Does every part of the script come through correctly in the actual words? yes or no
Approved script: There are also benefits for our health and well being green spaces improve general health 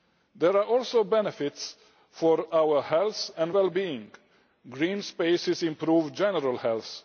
yes